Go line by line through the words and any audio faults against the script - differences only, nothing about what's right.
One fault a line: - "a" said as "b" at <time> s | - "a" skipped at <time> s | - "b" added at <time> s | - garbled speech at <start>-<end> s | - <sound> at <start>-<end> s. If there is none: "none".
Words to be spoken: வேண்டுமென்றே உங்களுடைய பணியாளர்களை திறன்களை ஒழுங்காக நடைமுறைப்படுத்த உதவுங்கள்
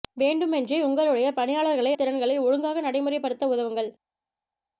none